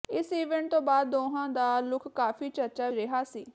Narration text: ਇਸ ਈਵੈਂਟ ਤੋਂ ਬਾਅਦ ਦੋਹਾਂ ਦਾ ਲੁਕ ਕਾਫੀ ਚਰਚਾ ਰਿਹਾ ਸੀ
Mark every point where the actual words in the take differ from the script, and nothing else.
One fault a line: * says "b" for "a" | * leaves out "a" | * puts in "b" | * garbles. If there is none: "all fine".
all fine